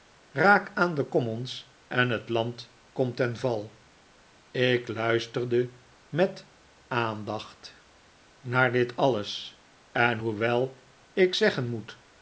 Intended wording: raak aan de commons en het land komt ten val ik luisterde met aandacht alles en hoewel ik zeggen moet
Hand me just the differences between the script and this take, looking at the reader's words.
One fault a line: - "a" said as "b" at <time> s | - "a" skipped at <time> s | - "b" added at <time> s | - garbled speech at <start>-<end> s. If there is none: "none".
- "naar dit" added at 8.4 s